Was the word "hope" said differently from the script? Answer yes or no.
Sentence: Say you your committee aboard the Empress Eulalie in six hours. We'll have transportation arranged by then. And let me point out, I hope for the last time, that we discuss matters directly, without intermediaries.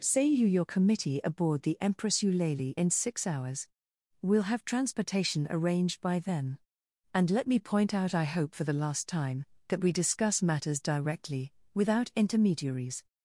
no